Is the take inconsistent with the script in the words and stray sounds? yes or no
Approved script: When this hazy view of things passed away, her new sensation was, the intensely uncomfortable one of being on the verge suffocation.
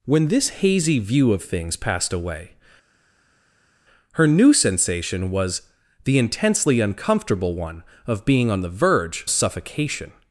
no